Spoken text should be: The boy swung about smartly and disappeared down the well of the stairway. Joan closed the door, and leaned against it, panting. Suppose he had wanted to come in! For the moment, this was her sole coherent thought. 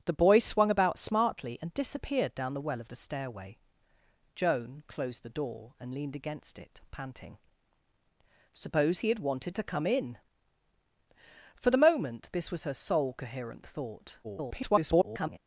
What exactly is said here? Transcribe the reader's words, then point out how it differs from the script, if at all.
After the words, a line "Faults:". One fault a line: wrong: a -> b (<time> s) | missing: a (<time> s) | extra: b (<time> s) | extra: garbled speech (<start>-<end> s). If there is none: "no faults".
The boy swung about smartly and disappeared down the well of the stairway. Joan closed the door, and leaned against it, panting. Suppose he had wanted to come in! For the moment, this was her sole coherent thought. [garbled]
Faults:
extra: garbled speech (14.2-15.4 s)